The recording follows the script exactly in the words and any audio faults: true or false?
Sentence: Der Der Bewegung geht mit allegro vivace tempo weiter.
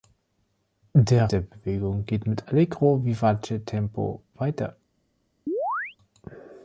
false